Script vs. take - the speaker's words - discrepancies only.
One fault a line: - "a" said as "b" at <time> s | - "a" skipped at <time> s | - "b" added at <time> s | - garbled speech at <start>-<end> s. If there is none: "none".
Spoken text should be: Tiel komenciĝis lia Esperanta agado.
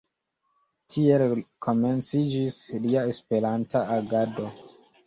none